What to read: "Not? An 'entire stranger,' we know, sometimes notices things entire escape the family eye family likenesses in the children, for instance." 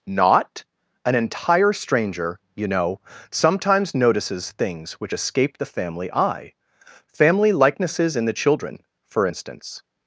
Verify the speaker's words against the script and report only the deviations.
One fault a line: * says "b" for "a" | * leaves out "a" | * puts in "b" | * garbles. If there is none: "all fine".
* says "you" for "we"
* says "which" for "entire"